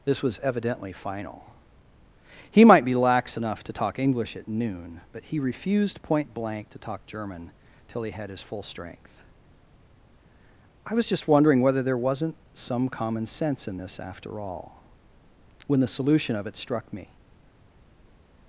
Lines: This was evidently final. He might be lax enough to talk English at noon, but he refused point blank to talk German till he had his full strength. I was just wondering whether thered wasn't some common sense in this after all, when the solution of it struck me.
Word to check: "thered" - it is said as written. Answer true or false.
false